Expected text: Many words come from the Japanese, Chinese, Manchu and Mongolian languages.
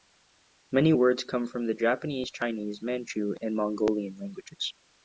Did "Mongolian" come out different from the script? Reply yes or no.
no